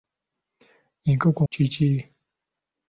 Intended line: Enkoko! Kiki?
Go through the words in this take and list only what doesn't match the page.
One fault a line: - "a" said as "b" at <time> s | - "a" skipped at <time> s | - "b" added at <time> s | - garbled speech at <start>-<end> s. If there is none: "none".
none